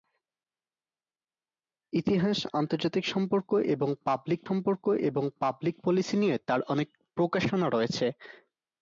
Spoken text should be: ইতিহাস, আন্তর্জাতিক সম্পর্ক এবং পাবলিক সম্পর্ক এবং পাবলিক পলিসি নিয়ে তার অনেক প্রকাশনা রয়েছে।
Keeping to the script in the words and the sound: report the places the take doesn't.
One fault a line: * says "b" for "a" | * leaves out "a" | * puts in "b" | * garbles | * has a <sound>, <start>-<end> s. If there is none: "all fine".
all fine